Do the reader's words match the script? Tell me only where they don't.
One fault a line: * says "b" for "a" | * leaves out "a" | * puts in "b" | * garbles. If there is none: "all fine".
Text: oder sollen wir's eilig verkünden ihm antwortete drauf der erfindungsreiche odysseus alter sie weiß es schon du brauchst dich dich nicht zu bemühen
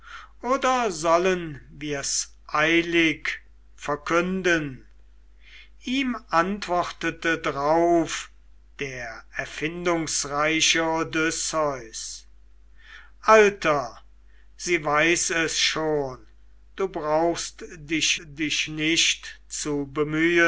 all fine